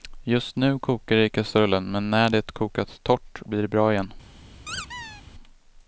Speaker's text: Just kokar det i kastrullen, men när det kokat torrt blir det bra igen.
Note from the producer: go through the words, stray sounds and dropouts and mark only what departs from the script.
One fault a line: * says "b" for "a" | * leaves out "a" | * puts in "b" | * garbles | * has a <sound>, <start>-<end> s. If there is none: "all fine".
* puts in "nu"
* has a squeak, 4.7-5.2 s